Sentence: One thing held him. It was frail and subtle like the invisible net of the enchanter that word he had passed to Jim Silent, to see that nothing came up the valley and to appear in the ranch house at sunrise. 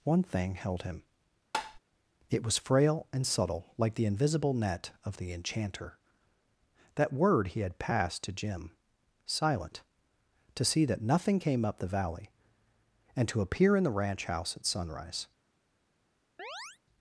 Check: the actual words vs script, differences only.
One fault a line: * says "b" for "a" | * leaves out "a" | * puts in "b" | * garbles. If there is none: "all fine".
all fine